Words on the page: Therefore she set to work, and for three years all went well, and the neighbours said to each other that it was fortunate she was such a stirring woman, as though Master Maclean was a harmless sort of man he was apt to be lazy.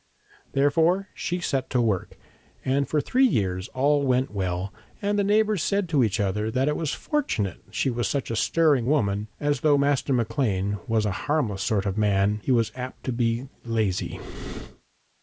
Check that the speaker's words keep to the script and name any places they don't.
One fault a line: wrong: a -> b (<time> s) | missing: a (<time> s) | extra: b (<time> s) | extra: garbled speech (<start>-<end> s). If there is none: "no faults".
no faults